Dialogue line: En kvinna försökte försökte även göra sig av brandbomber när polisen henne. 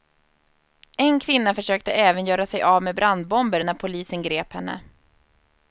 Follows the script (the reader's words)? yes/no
no